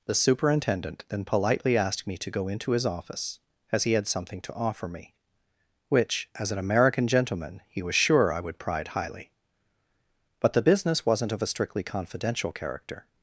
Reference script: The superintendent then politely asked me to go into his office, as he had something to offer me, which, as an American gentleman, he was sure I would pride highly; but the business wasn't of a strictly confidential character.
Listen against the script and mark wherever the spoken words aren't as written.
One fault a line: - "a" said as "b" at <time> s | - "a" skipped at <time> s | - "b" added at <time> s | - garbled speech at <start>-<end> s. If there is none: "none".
none